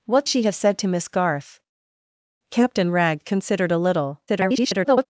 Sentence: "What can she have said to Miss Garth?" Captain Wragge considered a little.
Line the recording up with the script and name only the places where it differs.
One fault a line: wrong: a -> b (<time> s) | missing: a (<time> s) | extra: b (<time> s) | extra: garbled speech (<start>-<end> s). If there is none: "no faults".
missing: can (0.3 s)
extra: garbled speech (4.3-5.1 s)